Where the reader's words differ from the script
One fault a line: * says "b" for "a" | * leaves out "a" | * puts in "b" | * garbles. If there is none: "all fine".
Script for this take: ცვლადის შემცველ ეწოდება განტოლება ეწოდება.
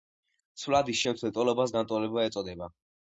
* says "ტოლობას" for "ეწოდება"